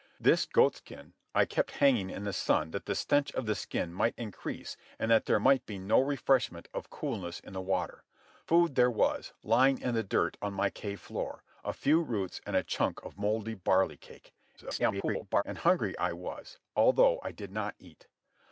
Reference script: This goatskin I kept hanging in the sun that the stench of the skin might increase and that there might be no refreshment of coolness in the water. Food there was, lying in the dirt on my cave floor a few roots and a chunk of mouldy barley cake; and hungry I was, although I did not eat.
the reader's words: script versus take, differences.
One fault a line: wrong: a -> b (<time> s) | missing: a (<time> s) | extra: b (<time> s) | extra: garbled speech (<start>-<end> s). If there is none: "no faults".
extra: garbled speech (14.6-15.4 s)